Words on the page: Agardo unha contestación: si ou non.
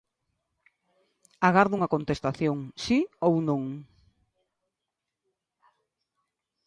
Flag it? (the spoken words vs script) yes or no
no